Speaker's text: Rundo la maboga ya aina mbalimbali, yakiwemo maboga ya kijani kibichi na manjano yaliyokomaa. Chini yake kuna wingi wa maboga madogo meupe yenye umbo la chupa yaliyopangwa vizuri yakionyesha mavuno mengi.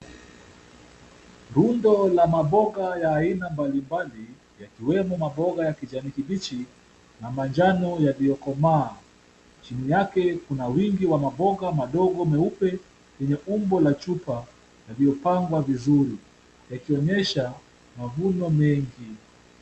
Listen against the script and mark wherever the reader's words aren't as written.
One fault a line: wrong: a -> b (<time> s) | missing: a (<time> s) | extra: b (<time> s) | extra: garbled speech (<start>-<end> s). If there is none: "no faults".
no faults